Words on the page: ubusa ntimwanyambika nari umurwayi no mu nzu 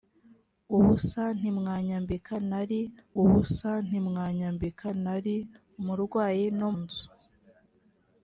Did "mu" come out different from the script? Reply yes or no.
yes